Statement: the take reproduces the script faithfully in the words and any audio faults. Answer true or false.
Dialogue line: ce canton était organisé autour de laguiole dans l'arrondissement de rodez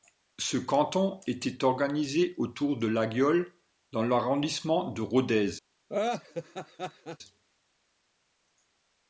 false